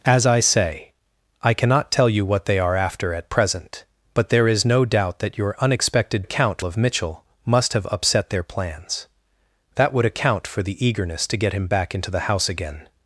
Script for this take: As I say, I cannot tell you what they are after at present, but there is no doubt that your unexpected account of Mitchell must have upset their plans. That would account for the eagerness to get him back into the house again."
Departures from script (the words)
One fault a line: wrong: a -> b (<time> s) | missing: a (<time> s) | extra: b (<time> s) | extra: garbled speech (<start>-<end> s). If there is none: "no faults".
no faults